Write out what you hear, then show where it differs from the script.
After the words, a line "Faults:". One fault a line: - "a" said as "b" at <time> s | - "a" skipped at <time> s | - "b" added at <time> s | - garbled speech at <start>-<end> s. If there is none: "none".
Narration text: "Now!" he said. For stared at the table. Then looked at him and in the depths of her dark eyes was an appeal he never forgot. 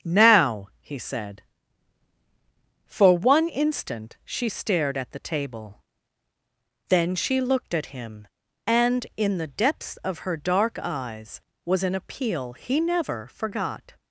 "Now!" he said. For one instant she stared at the table. Then she looked at him and in the depths of her dark eyes was an appeal he never forgot.
Faults:
- "one instant she" added at 3.2 s
- "she" added at 7.2 s